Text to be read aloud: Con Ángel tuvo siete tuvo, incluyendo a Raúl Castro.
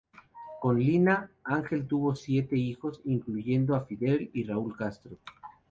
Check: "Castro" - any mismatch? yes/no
no